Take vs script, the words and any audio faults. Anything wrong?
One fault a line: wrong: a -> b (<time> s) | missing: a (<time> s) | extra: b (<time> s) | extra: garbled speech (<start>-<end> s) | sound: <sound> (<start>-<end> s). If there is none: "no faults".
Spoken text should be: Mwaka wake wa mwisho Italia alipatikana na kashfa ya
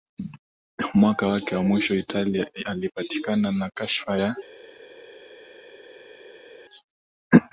no faults